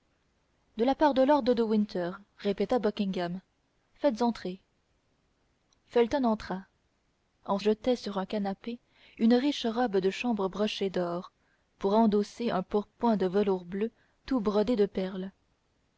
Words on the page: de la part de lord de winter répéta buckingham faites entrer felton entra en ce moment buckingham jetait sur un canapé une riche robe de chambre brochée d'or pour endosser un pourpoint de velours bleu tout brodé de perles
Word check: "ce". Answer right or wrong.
wrong